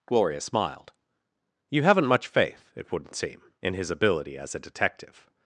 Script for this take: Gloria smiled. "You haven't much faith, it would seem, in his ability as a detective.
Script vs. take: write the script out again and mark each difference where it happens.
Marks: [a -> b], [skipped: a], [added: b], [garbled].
Gloria smiled. "You haven't much faith, it [would -> wouldn't] seem, in his ability as a detective.